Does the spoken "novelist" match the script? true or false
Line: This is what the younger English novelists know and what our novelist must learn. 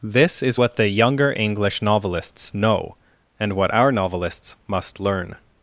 false